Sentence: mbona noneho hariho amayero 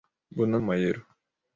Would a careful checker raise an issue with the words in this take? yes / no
yes